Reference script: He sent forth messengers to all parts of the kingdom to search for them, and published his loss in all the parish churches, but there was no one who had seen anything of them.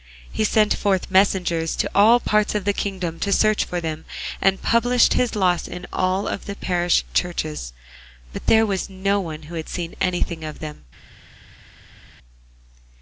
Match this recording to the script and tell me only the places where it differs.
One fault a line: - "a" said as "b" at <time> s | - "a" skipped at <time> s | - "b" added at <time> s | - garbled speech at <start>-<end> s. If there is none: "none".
none